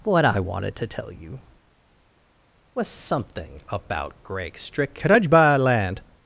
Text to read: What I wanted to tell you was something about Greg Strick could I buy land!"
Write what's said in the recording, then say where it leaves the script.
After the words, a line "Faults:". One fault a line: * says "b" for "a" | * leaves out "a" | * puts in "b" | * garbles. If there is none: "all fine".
What I wanted to tell you was something about Greg Strick could I buy land!"
Faults:
all fine